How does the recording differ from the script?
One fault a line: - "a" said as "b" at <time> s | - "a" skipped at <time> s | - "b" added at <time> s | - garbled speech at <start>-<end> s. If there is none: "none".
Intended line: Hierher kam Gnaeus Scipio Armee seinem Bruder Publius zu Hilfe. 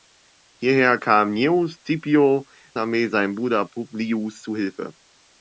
none